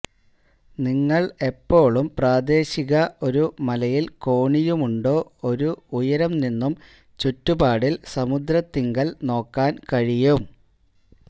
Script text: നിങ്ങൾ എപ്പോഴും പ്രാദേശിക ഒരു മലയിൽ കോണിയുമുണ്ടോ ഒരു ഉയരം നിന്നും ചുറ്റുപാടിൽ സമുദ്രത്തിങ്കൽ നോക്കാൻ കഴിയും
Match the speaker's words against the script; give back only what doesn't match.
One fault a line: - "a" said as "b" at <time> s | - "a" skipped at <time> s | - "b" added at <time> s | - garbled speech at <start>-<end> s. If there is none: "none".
none